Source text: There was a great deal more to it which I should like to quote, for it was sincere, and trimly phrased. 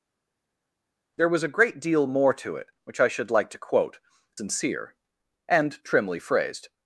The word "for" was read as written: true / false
false